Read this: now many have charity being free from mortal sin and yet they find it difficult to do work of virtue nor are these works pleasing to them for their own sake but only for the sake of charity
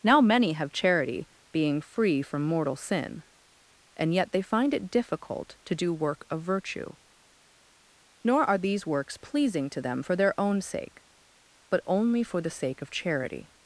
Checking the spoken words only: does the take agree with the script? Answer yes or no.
yes